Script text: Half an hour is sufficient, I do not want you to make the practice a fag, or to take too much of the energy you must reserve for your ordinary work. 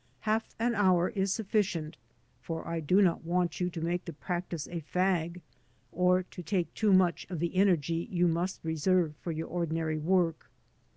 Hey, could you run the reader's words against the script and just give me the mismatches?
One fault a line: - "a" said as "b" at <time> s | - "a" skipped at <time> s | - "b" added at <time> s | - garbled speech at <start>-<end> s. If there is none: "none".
- "for" added at 2.4 s